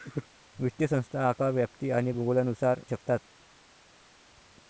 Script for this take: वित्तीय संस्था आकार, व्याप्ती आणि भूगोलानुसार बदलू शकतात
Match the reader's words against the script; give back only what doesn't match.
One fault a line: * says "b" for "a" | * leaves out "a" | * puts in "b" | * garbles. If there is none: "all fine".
* leaves out "बदलू"